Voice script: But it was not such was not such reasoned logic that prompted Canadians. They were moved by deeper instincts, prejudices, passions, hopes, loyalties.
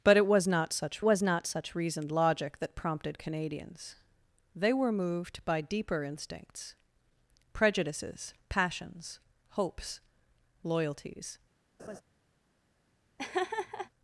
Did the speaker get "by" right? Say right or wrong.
right